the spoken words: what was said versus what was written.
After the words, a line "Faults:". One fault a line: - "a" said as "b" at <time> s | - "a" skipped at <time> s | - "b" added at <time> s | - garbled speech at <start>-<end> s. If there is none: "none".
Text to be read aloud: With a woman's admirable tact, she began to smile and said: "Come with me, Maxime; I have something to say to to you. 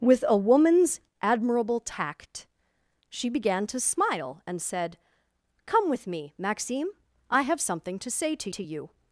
With a woman's admirable tact, she began to smile and said: "Come with me, Maxime; I have something to say to to you.
Faults:
none